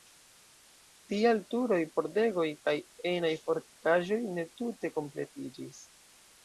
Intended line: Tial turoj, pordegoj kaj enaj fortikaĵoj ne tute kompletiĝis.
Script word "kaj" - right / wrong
right